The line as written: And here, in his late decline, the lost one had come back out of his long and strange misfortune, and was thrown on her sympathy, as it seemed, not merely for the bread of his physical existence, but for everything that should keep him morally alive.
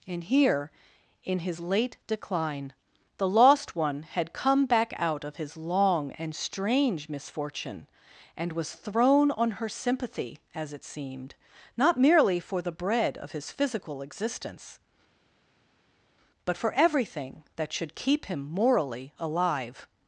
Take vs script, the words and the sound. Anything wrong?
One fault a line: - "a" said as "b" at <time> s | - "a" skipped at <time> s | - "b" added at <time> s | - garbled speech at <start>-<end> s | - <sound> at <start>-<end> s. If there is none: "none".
none